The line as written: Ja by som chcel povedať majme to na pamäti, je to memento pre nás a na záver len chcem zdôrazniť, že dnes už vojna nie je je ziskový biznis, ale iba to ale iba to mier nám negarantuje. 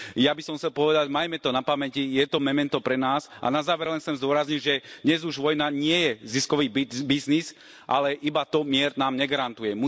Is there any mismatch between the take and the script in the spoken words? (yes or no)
yes